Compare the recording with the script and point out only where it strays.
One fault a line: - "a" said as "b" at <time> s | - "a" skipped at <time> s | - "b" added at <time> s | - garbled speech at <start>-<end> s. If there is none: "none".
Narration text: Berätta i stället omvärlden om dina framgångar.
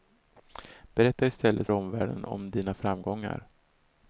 none